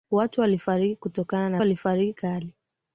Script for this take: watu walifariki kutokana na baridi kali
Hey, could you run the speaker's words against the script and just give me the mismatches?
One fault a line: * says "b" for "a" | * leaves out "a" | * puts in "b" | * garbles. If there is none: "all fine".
* says "walifariki" for "baridi"